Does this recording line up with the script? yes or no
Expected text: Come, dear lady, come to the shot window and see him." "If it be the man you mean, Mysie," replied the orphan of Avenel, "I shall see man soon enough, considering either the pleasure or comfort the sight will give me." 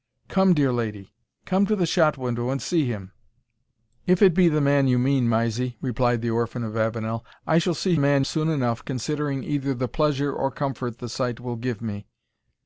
yes